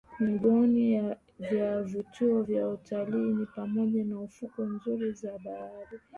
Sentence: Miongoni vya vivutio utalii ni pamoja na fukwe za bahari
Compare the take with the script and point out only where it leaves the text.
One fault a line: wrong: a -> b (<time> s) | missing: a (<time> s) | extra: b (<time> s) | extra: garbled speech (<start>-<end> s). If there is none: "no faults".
extra: vya (2.4 s)
extra: nzuri (4.7 s)